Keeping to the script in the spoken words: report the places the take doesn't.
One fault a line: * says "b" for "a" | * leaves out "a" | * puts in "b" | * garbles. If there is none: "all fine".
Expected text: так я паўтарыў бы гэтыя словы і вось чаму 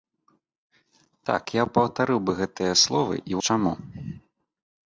* leaves out "вось"